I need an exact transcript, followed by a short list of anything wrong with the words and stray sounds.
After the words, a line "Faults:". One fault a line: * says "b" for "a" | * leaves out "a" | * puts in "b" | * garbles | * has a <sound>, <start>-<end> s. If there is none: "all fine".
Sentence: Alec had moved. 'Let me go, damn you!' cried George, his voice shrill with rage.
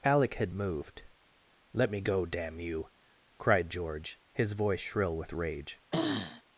Alec had moved. 'Let me go, damn you!' cried George, his voice shrill with rage.
Faults:
* has a throat clearing, 5.9-6.4 s